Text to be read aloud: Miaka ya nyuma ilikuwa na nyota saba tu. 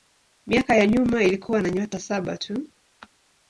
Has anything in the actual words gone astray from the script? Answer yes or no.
no